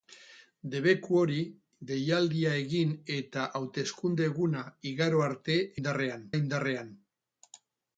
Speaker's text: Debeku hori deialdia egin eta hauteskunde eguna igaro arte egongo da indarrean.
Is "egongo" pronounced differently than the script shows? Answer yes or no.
yes